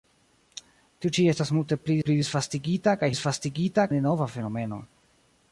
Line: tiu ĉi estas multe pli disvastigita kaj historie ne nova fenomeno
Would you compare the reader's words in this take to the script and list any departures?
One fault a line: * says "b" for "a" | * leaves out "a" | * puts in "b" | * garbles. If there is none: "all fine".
* puts in "pli"
* says "disvastigita" for "historie"